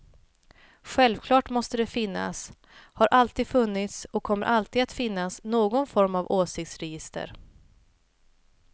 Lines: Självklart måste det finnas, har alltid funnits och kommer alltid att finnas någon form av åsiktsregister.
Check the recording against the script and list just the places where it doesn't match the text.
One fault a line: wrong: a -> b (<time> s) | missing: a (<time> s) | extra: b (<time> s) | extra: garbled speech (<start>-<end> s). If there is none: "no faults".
no faults